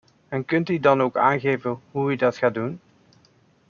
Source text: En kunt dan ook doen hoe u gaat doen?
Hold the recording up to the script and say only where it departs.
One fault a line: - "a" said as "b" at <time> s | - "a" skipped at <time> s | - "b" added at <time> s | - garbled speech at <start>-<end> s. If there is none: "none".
- "u" added at 0.7 s
- "doen" said as "aangeven" at 1.2 s
- "dat" added at 2.2 s